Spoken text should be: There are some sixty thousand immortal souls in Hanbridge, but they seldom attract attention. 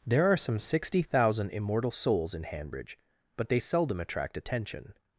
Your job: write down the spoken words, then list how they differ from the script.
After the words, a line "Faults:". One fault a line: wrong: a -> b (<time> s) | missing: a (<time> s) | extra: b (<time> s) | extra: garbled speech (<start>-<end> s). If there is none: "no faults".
There are some sixty thousand immortal souls in Hanbridge, but they seldom attract attention.
Faults:
no faults